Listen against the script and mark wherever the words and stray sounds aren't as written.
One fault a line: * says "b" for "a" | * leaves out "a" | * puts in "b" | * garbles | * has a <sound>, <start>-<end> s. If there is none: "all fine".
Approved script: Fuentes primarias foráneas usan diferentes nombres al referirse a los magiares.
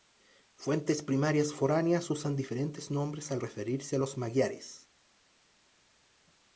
all fine